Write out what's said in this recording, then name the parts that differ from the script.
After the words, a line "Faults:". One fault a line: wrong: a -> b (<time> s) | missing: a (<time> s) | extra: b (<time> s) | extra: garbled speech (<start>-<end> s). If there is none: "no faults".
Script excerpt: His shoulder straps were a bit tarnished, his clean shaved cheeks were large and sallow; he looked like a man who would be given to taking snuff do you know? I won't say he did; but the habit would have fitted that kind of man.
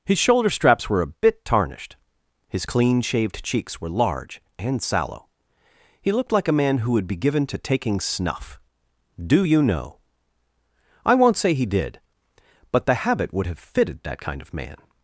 His shoulder straps were a bit tarnished, his clean shaved cheeks were large and sallow; he looked like a man who would be given to taking snuff do you know? I won't say he did; but the habit would have fitted that kind of man.
Faults:
no faults